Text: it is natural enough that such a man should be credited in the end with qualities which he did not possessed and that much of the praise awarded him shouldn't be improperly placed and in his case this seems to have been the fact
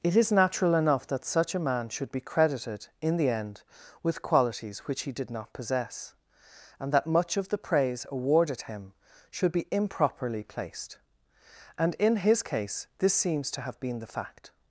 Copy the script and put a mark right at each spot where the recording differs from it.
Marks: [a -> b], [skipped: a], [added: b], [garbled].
it is natural enough that such a man should be credited in the end with qualities which he did not [possessed -> possess] and that much of the praise awarded him [shouldn't -> should] be improperly placed and in his case this seems to have been the fact